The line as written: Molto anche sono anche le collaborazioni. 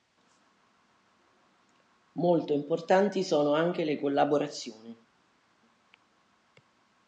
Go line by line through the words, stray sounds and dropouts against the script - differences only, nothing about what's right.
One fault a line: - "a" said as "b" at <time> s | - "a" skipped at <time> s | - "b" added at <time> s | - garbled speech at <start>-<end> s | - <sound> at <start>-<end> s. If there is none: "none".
- "anche" said as "importanti" at 2.5 s